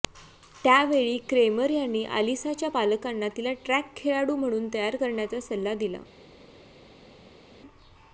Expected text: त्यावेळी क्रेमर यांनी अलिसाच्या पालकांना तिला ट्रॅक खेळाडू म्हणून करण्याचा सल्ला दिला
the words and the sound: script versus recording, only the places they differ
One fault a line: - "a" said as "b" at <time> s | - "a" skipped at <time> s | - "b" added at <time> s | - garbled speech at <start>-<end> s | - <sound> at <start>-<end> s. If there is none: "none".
- "तयार" added at 4.7 s